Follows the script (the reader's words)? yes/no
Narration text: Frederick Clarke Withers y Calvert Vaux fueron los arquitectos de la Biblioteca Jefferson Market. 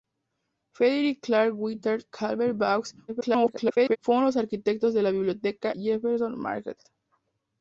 no